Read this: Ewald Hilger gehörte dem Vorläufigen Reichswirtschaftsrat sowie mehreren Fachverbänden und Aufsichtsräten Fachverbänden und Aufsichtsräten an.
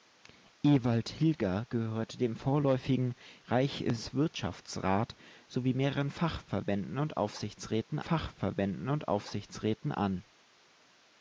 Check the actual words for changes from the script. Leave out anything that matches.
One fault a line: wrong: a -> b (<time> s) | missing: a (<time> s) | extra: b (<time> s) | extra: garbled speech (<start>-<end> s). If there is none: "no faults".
no faults